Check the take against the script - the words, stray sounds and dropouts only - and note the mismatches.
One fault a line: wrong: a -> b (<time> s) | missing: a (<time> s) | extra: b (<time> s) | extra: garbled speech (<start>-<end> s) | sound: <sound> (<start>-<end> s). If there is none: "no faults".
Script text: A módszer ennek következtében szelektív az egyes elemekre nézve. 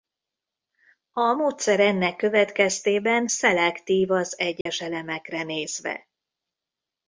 sound: dropout (4.6-4.7 s)